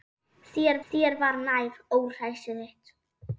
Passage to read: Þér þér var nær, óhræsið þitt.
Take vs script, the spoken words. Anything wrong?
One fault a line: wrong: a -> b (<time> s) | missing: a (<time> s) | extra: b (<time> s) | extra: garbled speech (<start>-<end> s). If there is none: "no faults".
no faults